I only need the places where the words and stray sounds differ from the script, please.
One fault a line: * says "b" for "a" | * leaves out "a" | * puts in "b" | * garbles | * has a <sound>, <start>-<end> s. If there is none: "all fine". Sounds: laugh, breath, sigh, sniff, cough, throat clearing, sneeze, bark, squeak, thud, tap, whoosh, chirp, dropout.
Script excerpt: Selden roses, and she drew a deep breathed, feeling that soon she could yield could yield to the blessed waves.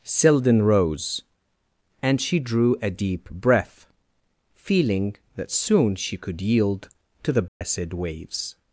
* says "rose" for "roses"
* says "breath" for "breathed"
* leaves out "could yield"
* has a dropout, 7.5-7.6 s